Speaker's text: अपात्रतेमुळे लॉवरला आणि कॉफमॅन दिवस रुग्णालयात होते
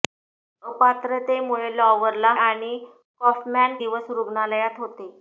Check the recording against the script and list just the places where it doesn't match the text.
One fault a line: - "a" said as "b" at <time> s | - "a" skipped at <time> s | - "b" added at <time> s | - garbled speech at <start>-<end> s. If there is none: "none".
none